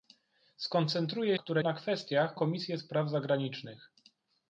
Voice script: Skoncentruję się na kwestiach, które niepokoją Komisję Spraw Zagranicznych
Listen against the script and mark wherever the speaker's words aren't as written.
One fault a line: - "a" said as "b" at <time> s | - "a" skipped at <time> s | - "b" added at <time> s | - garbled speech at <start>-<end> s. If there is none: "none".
- "się" said as "które" at 1.4 s
- "które niepokoją" skipped at 2.4 s